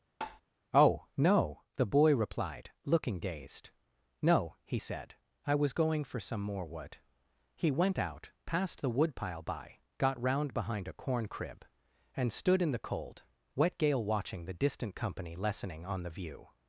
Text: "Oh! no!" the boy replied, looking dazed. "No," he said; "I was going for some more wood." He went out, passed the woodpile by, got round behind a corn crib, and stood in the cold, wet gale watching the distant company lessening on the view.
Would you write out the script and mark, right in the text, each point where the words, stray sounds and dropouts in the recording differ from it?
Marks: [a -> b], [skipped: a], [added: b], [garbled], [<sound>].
[tap] "Oh! no!" the boy replied, looking dazed. "No," he said; "I was going for some more wood." He went out, passed the woodpile by, got round behind a corn crib, and stood in the cold, wet gale watching the distant company lessening on the view.